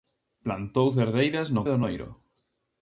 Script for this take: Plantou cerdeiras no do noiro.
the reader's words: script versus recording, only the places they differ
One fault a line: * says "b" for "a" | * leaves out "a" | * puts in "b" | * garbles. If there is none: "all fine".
all fine